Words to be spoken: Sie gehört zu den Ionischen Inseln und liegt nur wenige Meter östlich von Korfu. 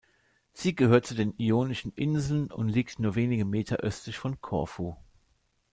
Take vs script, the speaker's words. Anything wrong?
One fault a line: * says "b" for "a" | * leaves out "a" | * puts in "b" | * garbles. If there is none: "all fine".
all fine